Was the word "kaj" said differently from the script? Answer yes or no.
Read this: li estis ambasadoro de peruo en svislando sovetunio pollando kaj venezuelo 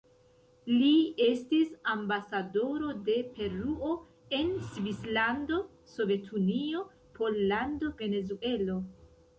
yes